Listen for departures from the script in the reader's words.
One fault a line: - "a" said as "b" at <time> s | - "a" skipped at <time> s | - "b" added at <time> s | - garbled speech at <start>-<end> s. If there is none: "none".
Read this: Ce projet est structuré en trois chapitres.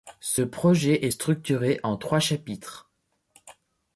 none